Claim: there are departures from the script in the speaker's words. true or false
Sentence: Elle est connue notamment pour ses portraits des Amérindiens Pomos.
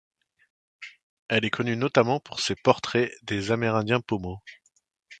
false